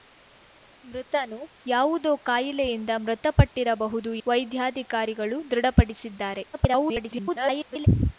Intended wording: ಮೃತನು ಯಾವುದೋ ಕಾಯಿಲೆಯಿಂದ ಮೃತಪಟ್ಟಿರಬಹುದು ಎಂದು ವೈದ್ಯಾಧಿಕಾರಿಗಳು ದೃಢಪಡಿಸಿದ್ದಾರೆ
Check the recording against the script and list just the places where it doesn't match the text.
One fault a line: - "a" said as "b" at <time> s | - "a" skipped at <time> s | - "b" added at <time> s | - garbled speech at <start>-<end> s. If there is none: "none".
- "ಎಂದು" skipped at 4.1 s
- garbled speech at 6.5-7.9 s